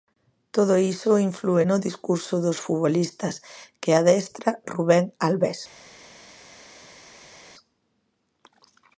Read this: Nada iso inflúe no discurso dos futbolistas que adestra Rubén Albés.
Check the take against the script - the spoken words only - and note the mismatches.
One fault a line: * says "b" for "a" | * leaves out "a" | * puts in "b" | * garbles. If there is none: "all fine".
* says "Todo" for "Nada"